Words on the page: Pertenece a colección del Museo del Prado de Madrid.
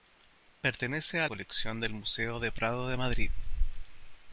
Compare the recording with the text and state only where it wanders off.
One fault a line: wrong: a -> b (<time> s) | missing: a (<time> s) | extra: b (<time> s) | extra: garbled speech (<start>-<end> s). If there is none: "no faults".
no faults